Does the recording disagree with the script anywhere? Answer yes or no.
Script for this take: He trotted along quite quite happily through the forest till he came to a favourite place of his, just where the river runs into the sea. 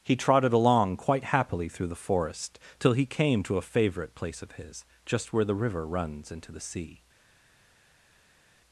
yes